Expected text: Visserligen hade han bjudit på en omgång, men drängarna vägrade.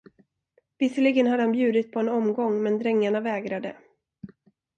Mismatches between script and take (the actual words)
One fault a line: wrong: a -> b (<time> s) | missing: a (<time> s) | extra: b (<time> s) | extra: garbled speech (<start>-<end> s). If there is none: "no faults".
no faults